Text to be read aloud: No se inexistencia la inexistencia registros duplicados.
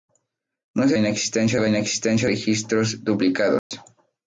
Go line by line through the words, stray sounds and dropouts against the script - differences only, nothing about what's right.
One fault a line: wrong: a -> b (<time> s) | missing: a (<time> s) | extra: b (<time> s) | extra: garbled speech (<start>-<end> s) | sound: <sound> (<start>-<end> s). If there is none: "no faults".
sound: dropout (3.6-3.7 s)